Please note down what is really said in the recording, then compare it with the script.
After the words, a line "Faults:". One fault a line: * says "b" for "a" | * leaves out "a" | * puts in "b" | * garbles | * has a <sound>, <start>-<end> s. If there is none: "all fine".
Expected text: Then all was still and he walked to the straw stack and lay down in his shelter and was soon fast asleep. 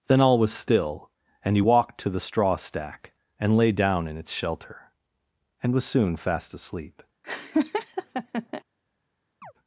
Then all was still and he walked to the straw stack and lay down in its shelter and was soon fast asleep.
Faults:
* says "its" for "his"
* has a laugh, 7.2-8.6 s
* has a chirp, 9.4-9.5 s